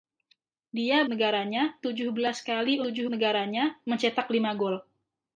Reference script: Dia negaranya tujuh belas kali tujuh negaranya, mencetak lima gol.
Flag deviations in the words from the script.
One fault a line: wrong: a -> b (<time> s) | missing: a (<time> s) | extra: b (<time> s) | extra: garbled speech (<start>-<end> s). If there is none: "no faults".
no faults